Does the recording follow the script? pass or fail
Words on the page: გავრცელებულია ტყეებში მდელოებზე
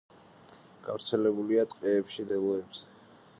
pass